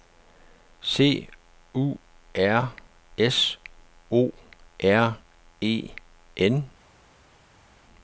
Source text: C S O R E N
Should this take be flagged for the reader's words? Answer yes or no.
yes